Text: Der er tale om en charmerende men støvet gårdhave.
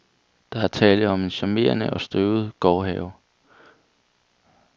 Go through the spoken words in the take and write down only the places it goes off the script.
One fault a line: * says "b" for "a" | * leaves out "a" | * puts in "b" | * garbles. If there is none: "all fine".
* says "og" for "men"